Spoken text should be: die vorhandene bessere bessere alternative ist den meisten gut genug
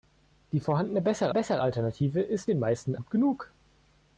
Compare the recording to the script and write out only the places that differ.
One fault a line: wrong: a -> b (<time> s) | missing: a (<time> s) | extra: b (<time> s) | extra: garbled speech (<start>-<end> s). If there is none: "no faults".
no faults